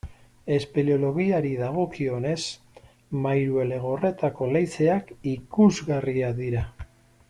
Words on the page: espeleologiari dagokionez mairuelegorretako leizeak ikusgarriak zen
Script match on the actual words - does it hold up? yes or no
no